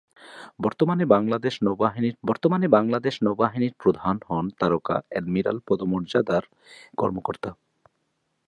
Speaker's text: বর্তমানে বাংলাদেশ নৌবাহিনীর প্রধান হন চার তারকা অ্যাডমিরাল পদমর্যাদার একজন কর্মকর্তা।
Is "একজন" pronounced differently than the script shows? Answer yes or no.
yes